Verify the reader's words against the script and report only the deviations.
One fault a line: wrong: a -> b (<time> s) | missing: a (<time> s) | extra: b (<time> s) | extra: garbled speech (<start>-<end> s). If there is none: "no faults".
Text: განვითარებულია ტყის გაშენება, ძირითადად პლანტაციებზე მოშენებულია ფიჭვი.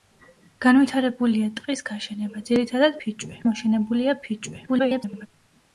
wrong: პლანტაციებზე -> ფიჭვი (3.0 s)
extra: garbled speech (4.7-5.3 s)